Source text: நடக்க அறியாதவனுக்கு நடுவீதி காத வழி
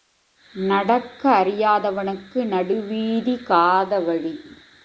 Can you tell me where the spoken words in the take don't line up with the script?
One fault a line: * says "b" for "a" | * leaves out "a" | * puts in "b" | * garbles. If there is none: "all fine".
all fine